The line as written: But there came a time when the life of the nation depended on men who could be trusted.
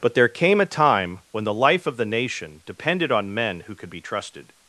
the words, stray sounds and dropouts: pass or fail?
pass